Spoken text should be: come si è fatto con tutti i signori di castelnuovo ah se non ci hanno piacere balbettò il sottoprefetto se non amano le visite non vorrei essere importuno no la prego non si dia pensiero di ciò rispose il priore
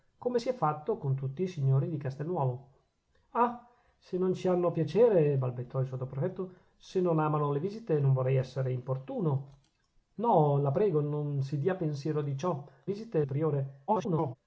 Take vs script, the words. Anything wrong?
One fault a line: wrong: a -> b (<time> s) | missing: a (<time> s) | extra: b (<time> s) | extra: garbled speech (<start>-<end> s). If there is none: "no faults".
wrong: rispose -> visite (12.8 s)
extra: garbled speech (13.9-14.4 s)